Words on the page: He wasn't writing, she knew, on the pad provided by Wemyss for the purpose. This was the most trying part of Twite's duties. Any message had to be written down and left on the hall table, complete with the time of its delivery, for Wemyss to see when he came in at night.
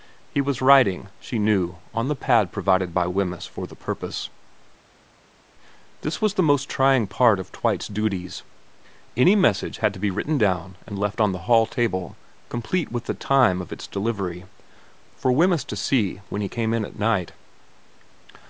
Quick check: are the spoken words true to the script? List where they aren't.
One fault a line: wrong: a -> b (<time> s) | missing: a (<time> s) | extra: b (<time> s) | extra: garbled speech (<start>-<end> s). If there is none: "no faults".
wrong: wasn't -> was (0.4 s)